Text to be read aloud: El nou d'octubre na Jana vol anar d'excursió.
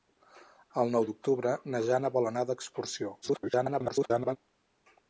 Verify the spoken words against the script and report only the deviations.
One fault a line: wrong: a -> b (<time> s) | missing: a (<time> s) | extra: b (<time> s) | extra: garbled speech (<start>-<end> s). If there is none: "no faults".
extra: garbled speech (3.2-4.4 s)